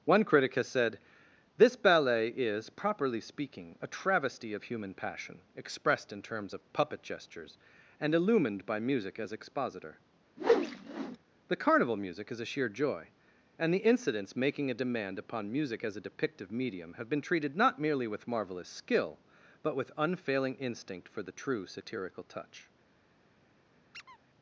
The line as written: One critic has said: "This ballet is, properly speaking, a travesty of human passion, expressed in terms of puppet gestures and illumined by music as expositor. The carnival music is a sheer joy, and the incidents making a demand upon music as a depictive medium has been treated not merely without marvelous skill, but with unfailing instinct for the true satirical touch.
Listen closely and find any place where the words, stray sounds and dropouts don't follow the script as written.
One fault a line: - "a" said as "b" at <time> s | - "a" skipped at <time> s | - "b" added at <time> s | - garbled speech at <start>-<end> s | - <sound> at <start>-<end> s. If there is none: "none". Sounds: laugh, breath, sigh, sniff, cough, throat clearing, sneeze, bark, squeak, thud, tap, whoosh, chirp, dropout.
- whoosh at 10.4-11.2 s
- "has" said as "have" at 16.9 s
- "without" said as "with" at 18.1 s
- squeak at 23.9-24.2 s